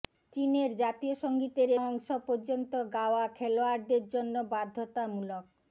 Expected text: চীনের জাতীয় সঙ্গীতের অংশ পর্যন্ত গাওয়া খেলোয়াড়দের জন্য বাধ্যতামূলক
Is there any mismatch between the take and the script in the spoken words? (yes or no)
no